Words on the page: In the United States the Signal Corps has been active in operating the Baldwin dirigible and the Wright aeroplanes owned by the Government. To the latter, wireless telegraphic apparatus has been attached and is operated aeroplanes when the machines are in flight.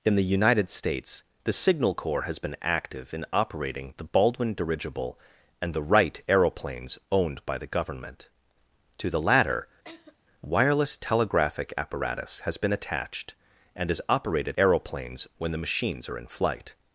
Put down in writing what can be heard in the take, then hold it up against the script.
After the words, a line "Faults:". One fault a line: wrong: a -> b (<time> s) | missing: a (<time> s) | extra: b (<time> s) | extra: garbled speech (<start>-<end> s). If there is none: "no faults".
In the United States the Signal Corps has been active in operating the Baldwin dirigible and the Wright aeroplanes owned by the Government. To the latter, wireless telegraphic apparatus has been attached and is operated aeroplanes when the machines are in flight.
Faults:
no faults